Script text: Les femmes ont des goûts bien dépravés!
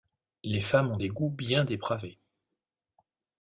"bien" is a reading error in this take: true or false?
false